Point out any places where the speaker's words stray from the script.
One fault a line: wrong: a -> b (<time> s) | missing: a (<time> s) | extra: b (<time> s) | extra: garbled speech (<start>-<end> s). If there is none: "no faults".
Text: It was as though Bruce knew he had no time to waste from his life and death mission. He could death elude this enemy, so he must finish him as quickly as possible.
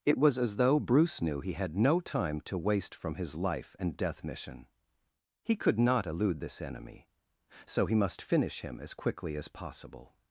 wrong: death -> not (5.8 s)